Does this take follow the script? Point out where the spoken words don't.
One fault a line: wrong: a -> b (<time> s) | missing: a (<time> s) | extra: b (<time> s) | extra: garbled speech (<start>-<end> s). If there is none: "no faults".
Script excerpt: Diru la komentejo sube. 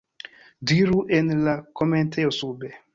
extra: en (1.2 s)